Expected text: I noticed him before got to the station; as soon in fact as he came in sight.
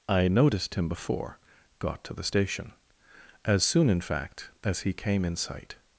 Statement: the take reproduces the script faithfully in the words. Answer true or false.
true